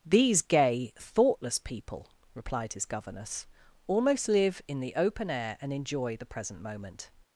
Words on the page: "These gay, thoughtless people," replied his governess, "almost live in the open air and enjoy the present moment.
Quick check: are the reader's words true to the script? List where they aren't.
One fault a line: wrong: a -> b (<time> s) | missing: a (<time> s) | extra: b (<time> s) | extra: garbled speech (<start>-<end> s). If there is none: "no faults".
no faults